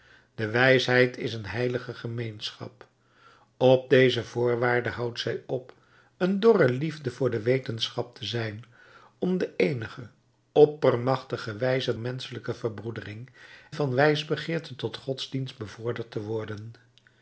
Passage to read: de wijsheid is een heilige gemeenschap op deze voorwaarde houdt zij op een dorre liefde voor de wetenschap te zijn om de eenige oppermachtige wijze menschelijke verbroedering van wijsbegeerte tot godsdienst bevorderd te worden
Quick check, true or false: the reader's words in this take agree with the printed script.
true